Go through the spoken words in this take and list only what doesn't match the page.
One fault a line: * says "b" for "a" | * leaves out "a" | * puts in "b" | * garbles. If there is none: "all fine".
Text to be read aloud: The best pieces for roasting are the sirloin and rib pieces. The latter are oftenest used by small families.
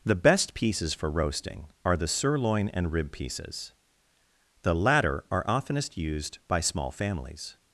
all fine